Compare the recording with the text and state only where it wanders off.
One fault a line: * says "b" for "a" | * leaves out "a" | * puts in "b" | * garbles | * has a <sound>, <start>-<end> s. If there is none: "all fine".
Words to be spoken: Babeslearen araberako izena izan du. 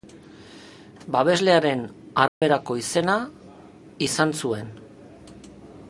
* has a dropout, 2.3-2.4 s
* says "zuen" for "du"